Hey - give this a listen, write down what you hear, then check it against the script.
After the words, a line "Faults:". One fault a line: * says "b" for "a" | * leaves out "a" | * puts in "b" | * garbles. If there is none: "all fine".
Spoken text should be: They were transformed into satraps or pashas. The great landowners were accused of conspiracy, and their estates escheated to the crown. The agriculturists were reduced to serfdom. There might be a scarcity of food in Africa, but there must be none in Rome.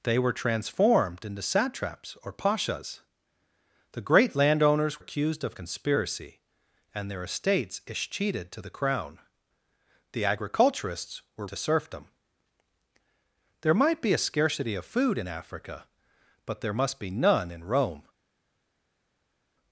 They were transformed into satraps or pashas. The great landowners accused of conspiracy, and their estates escheated to the crown. The agriculturists were to serfdom. There might be a scarcity of food in Africa, but there must be none in Rome.
Faults:
* leaves out "were"
* leaves out "reduced"